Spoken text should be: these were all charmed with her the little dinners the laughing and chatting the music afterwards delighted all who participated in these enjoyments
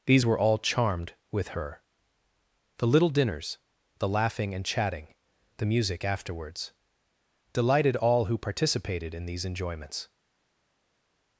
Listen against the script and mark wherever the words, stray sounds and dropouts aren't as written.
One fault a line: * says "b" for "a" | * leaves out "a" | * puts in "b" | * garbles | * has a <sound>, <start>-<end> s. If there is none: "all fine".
all fine